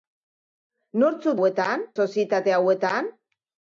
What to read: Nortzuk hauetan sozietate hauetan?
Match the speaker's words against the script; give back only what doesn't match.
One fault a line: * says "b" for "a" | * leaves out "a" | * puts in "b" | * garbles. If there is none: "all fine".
all fine